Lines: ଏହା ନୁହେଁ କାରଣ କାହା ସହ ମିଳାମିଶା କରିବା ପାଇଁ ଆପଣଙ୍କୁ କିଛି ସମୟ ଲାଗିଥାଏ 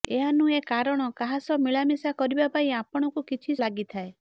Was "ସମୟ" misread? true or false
true